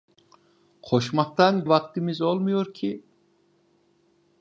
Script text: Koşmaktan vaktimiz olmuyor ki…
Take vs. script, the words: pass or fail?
pass